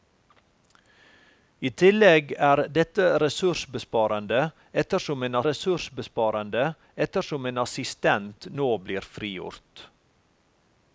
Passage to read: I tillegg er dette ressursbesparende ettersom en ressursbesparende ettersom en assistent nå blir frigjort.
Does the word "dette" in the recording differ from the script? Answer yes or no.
no